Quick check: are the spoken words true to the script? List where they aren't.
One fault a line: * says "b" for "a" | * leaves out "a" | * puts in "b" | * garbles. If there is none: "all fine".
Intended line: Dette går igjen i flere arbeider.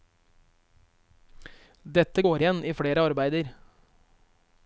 all fine